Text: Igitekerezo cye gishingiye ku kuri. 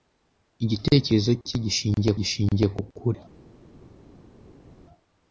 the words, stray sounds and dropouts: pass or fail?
fail